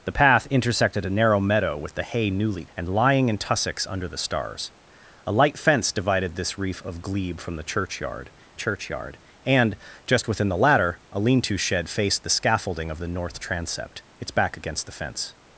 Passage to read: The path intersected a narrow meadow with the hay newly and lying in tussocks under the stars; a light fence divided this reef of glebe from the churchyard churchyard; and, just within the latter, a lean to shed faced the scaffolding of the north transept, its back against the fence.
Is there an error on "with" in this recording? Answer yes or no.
no